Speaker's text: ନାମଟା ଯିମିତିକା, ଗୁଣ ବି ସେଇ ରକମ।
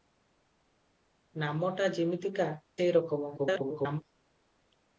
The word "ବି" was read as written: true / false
false